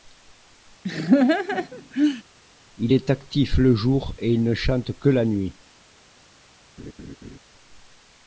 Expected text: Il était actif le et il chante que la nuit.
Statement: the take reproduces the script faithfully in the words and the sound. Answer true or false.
false